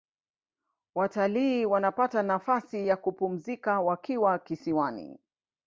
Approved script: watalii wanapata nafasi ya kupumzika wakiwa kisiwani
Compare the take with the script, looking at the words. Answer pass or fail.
pass